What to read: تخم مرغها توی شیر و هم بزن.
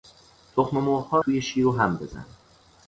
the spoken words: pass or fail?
pass